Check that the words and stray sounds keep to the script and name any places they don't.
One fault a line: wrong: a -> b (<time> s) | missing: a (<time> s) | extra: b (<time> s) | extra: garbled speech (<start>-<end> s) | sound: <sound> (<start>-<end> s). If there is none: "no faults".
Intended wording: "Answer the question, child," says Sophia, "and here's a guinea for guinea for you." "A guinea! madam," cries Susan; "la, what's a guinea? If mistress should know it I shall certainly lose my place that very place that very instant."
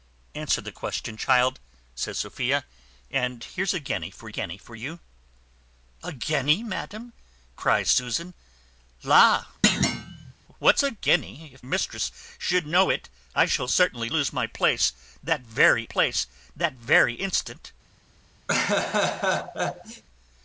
sound: thud (9.6-10.3 s)
sound: laugh (18.5-20.0 s)